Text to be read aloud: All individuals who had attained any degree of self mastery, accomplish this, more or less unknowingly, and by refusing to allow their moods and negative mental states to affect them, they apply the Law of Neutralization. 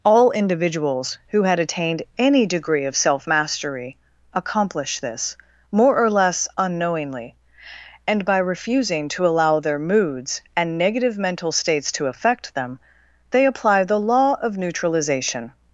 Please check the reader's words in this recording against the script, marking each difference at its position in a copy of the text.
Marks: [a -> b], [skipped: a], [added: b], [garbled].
All individuals who had attained any degree of self mastery, accomplish this, more or less unknowingly, and by refusing to allow their moods and negative mental states to affect them, they apply the Law of Neutralization.